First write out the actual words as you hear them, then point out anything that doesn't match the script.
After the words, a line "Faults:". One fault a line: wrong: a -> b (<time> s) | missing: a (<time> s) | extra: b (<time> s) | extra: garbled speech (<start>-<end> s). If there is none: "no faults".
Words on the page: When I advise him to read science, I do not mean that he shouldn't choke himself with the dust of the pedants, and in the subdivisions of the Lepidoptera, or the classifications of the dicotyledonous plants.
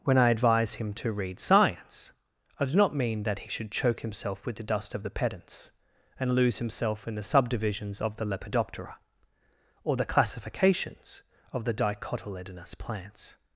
When I advise him to read science, I do not mean that he should choke himself with the dust of the pedants, and lose himself in the subdivisions of the Lepidoptera, or the classifications of the dicotyledonous plants.
Faults:
wrong: shouldn't -> should (3.5 s)
extra: lose himself (6.3 s)